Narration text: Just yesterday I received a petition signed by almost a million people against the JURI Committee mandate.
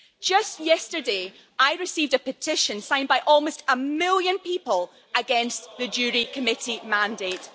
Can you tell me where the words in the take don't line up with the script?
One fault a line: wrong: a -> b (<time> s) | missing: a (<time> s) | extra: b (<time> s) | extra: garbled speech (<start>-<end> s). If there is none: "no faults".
no faults